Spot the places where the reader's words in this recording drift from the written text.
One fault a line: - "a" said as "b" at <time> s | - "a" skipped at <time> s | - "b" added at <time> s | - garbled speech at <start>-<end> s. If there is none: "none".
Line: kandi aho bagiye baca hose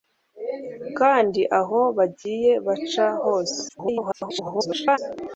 - garbled speech at 3.7-5.0 s